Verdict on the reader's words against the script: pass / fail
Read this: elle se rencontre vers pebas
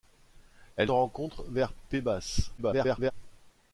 fail